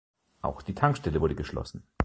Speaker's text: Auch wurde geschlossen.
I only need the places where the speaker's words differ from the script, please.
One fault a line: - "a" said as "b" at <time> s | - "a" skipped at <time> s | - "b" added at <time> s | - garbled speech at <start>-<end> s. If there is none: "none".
- "die Tankstelle" added at 0.6 s